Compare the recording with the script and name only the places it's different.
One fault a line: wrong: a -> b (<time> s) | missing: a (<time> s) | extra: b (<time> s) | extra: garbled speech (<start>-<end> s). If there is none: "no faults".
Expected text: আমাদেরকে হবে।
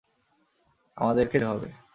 no faults